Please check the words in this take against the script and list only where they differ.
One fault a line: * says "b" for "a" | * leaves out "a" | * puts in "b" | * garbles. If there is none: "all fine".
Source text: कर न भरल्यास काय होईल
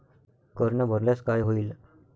all fine